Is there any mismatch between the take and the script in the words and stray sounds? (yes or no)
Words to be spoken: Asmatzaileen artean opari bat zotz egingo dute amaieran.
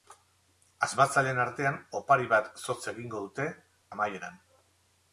no